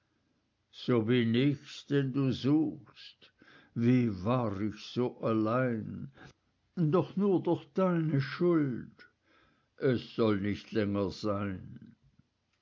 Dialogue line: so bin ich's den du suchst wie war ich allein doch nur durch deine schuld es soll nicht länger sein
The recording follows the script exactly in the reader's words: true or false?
false